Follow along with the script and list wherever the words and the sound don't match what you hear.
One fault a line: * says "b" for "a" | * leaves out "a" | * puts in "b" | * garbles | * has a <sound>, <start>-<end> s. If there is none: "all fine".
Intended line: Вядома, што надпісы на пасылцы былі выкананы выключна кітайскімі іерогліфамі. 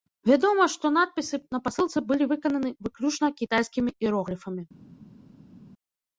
all fine